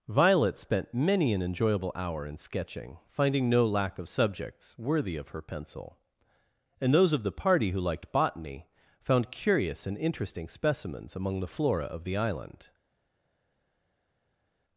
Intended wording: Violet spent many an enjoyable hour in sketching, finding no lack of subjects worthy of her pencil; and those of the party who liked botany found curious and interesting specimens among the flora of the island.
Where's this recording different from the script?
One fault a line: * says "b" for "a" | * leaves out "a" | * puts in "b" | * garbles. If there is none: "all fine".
all fine